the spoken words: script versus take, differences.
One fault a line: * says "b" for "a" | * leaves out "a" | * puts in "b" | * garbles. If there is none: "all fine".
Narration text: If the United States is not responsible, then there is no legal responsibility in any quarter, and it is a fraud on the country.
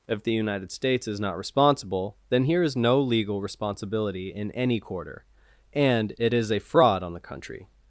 * says "here" for "there"